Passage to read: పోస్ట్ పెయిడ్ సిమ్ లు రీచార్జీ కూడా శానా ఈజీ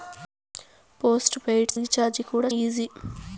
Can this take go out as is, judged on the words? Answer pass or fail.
fail